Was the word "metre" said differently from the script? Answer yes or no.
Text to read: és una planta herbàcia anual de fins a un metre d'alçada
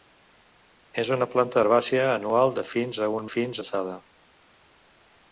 yes